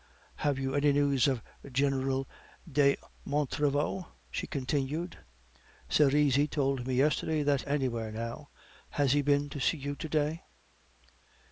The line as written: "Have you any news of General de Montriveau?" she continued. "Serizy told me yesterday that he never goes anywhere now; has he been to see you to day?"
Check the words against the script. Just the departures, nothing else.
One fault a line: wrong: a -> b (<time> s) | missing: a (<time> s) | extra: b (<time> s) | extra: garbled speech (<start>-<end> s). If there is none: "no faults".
missing: he never goes (7.6 s)